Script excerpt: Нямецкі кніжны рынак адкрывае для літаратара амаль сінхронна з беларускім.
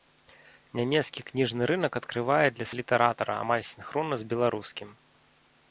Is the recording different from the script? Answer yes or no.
no